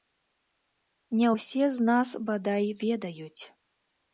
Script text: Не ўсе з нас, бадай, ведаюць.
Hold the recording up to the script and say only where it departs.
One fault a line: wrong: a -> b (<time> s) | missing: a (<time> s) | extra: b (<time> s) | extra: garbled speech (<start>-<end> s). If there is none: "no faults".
no faults